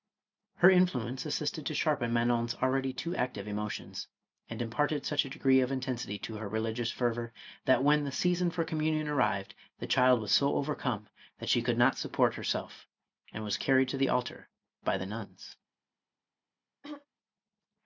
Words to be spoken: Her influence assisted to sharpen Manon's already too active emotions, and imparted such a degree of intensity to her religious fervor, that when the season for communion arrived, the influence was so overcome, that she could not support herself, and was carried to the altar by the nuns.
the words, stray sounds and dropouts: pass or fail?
fail